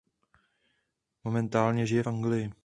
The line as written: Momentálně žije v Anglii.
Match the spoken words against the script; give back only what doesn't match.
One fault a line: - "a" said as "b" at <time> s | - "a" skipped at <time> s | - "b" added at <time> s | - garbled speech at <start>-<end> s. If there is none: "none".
- "v" skipped at 2.0 s